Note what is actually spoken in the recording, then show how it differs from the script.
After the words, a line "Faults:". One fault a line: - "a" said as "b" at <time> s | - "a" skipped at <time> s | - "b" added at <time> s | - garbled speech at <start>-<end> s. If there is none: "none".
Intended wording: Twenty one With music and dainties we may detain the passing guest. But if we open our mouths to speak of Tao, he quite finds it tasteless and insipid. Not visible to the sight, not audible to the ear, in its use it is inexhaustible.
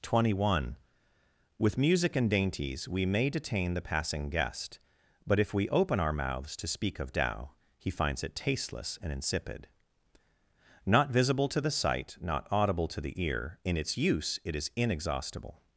Twenty one With music and dainties we may detain the passing guest. But if we open our mouths to speak of Tao, he finds it tasteless and insipid. Not visible to the sight, not audible to the ear, in its use it is inexhaustible.
Faults:
- "quite" skipped at 7.9 s